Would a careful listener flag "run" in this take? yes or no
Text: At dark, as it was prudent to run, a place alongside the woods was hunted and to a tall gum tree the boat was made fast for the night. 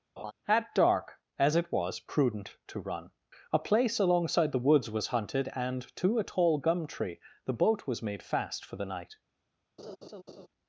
no